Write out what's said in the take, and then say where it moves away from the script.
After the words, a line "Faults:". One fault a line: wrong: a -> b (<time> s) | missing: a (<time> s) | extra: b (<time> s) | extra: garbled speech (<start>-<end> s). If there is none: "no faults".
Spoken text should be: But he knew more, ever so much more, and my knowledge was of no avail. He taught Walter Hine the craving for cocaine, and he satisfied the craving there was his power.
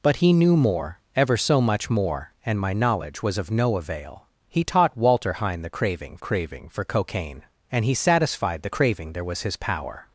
But he knew more, ever so much more, and my knowledge was of no avail. He taught Walter Hine the craving craving for cocaine, and he satisfied the craving there was his power.
Faults:
extra: craving (6.2 s)